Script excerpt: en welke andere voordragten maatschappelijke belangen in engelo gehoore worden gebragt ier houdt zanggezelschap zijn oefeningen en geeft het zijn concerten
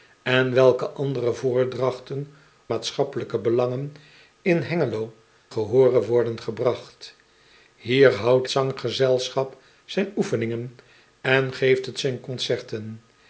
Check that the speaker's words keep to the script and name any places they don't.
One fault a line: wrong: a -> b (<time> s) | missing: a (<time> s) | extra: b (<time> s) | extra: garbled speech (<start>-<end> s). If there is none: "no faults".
no faults